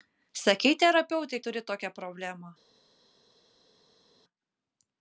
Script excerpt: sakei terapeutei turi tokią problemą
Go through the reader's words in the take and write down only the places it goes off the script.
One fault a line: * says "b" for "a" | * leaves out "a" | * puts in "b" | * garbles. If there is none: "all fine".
all fine